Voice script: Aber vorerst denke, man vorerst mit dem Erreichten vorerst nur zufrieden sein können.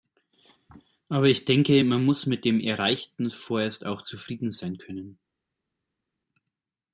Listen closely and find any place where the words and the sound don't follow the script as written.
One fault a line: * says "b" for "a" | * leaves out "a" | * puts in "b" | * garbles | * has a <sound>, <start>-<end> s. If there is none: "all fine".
* says "ich" for "vorerst"
* says "muss" for "vorerst"
* says "auch" for "nur"